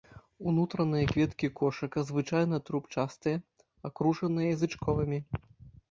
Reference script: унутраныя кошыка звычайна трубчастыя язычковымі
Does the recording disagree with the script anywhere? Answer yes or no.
yes